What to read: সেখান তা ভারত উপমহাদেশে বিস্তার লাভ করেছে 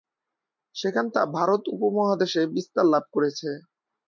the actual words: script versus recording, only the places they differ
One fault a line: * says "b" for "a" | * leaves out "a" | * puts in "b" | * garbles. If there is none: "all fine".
all fine